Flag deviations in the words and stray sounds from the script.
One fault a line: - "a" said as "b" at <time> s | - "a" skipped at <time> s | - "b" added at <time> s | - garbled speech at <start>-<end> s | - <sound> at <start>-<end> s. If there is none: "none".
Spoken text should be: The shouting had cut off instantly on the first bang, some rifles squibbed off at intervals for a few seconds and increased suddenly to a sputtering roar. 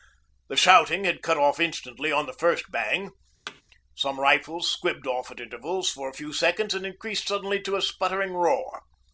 - thud at 3.5-3.6 s